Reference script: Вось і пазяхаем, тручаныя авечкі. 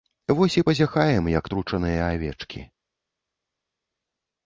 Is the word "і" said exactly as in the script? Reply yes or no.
yes